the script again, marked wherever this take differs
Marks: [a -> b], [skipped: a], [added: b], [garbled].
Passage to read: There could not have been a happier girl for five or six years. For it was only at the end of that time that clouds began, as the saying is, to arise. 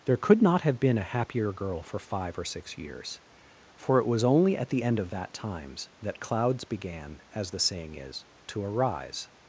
There could not have been a happier girl for five or six years. For it was only at the end of that [time -> times] that clouds began, as the saying is, to arise.